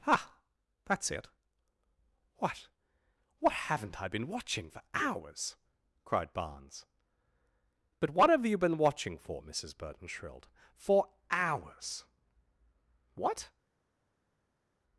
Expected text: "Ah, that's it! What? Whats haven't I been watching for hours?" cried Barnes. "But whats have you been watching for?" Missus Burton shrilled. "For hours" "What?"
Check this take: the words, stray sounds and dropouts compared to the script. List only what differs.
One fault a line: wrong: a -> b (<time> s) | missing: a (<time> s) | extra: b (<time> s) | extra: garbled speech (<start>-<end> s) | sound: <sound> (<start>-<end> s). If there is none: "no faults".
wrong: Whats -> What (3.4 s)
wrong: whats -> what (8.1 s)